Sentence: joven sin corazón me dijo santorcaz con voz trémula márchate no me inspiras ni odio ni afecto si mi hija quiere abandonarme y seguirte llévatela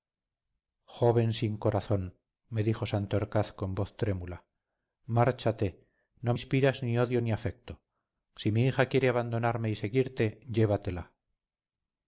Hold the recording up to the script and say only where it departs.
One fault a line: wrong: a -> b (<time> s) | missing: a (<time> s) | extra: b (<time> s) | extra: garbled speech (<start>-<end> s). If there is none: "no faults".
missing: me (6.3 s)